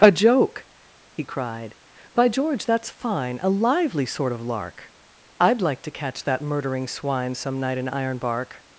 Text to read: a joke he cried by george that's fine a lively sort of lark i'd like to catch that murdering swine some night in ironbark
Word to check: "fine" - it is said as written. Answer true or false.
true